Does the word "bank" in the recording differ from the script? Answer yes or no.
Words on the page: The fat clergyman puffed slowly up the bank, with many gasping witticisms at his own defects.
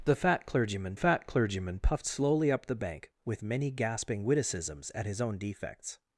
no